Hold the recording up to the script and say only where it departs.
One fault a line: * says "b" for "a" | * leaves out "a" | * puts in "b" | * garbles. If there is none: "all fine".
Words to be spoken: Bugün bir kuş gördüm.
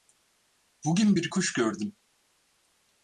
all fine